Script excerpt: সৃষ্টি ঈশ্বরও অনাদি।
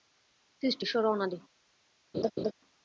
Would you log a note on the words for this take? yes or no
no